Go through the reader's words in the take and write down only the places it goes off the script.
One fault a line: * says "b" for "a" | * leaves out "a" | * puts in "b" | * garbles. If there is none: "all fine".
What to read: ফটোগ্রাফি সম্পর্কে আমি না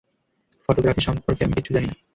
* puts in "কিচ্ছু জানি"